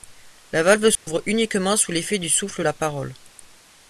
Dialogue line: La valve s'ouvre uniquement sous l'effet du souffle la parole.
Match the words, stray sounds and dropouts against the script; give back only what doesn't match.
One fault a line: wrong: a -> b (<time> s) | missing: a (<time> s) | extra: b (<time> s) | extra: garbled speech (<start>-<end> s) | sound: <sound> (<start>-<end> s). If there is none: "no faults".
sound: dropout (1.0-1.1 s)